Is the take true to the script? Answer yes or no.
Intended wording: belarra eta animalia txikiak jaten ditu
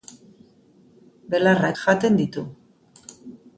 no